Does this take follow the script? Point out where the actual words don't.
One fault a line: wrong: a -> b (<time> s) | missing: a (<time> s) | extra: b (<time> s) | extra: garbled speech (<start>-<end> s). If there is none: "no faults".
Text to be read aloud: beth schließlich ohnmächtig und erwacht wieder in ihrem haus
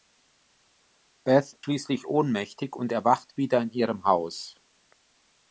no faults